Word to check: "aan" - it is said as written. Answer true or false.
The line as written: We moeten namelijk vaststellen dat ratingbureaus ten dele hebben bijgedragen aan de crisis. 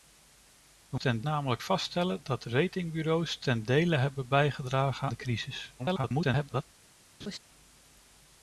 false